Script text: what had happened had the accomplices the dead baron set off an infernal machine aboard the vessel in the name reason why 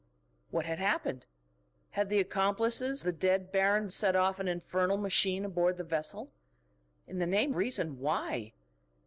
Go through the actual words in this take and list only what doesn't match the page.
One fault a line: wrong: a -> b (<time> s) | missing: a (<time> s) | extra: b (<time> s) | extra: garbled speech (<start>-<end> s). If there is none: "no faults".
no faults